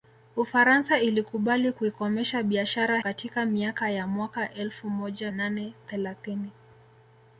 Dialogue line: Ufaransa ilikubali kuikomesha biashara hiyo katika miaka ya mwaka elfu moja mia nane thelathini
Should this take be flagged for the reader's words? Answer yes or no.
yes